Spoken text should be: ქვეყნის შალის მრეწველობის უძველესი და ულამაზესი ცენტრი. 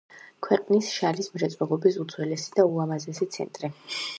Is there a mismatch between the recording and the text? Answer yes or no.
no